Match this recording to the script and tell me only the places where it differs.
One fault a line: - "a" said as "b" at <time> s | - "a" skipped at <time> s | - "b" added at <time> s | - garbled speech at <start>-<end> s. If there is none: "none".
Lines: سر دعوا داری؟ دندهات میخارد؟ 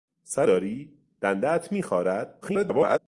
- "دعوا" skipped at 0.5 s
- garbled speech at 2.4-3.0 s